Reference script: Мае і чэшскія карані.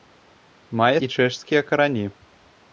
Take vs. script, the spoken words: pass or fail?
pass